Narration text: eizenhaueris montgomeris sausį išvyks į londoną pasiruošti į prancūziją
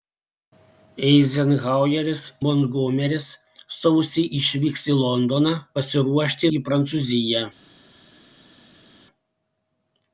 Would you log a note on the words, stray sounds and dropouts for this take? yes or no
no